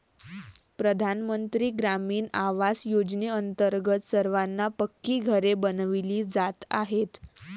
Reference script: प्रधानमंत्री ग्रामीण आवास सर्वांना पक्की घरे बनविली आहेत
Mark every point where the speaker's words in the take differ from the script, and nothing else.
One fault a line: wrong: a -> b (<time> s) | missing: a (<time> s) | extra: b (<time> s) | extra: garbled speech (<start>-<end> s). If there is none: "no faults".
extra: योजनेअंतर्गत (2.9 s)
extra: जात (6.3 s)